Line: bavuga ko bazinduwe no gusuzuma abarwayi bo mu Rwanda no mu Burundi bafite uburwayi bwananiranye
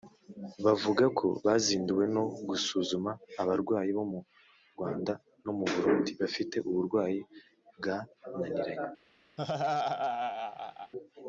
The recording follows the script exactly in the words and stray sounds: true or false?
false